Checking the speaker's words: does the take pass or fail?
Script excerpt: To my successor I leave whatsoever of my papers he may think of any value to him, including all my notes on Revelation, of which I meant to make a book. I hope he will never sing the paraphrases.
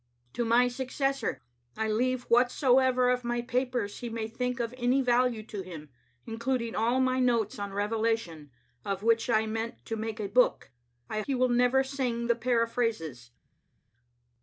fail